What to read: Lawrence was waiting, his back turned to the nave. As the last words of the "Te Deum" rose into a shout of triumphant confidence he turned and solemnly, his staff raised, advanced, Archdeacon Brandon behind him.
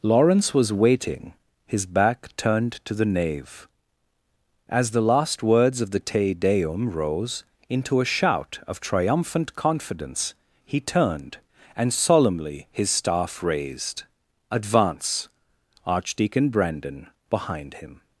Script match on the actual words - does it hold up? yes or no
no